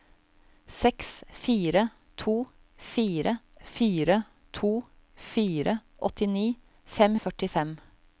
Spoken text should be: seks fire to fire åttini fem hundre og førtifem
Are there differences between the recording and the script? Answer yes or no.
yes